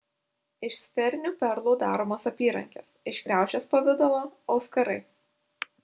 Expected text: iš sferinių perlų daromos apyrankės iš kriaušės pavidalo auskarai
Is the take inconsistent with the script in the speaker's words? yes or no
no